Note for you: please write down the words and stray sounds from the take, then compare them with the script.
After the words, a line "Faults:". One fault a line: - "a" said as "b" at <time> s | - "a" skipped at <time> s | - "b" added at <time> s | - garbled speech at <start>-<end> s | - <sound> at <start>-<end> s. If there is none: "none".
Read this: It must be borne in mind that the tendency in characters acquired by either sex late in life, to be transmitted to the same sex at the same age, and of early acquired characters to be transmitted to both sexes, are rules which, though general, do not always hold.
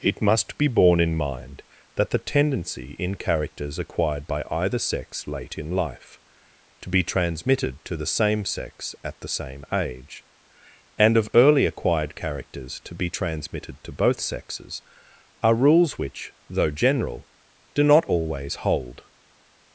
It must be borne in mind that the tendency in characters acquired by either sex late in life, to be transmitted to the same sex at the same age, and of early acquired characters to be transmitted to both sexes, are rules which, though general, do not always hold.
Faults:
none